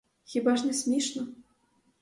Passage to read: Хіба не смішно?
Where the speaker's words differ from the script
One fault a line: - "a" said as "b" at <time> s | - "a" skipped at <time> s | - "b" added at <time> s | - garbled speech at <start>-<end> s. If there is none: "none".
- "ж" added at 0.6 s